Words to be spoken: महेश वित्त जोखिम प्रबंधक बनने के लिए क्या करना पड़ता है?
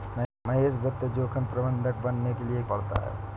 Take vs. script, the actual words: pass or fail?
fail